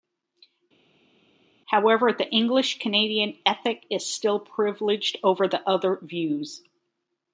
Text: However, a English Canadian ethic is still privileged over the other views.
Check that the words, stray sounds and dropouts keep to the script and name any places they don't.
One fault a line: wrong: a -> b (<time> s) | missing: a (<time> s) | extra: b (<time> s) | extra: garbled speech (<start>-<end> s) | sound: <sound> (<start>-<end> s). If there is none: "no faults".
wrong: a -> the (2.1 s)